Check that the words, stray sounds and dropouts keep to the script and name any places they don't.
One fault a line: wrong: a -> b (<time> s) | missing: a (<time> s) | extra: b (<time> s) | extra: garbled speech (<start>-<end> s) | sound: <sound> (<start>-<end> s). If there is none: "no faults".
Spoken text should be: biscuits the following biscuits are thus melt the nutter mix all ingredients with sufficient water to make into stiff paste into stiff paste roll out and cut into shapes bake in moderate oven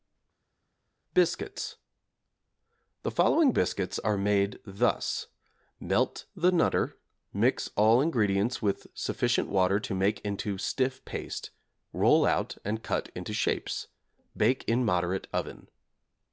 extra: made (4.2 s)
missing: into stiff paste (11.5 s)